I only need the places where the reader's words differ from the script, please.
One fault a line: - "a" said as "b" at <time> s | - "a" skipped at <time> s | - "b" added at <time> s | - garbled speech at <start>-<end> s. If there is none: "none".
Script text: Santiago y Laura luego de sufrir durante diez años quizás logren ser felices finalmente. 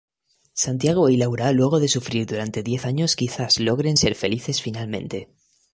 none